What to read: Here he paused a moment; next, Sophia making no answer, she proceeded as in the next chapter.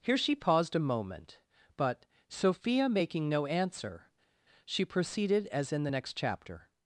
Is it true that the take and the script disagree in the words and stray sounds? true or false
true